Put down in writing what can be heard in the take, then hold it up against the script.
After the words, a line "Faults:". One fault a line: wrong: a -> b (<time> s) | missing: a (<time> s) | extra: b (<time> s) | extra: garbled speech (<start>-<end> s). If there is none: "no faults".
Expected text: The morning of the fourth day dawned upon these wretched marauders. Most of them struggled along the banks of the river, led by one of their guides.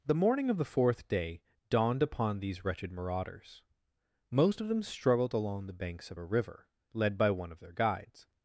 The morning of the fourth day dawned upon these wretched marauders. Most of them struggled along the banks of a river, led by one of their guides.
Faults:
wrong: the -> a (6.2 s)